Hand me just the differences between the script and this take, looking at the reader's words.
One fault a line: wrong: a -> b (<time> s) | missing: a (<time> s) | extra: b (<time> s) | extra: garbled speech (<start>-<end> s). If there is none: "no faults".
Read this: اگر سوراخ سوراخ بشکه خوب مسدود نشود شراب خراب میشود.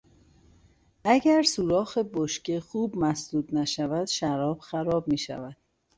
missing: سوراخ (2.0 s)